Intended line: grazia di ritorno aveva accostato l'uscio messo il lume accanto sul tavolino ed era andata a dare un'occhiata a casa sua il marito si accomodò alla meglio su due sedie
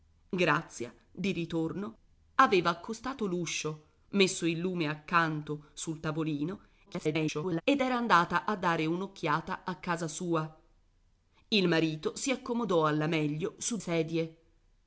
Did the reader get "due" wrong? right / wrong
wrong